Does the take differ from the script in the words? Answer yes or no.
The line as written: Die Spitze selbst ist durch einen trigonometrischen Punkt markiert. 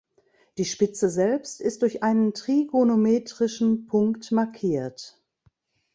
no